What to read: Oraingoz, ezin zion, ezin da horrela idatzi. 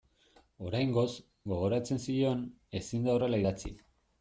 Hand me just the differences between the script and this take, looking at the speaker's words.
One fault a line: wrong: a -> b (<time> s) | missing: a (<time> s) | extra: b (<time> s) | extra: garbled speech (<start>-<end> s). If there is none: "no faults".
wrong: ezin -> gogoratzen (1.5 s)